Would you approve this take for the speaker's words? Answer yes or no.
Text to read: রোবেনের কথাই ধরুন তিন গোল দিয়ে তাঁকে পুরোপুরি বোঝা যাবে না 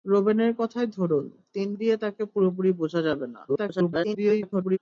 no